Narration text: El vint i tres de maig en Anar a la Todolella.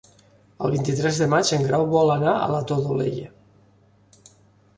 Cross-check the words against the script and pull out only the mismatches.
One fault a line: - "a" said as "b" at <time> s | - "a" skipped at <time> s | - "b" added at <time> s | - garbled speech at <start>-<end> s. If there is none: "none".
- "Grau vol" added at 1.7 s